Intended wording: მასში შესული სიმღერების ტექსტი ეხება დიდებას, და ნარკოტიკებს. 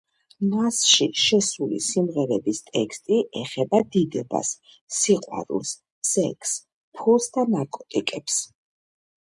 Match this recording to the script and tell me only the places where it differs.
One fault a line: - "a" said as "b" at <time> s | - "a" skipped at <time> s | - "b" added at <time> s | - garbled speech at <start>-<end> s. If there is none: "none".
- "სიყვარულს სექსს ფულს" added at 5.0 s